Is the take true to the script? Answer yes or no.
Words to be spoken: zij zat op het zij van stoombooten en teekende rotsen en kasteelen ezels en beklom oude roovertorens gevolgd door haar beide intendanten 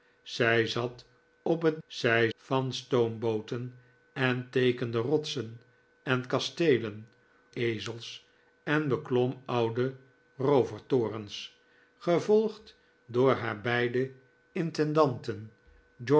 yes